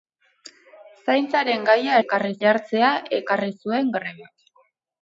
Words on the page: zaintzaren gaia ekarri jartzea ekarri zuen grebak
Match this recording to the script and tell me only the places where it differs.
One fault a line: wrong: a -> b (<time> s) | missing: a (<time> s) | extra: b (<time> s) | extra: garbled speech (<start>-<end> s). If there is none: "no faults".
no faults